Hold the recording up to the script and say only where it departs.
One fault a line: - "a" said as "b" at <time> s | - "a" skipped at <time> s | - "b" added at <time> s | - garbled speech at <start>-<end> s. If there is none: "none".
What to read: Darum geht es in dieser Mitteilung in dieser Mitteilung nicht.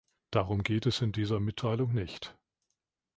- "in dieser Mitteilung" skipped at 1.9 s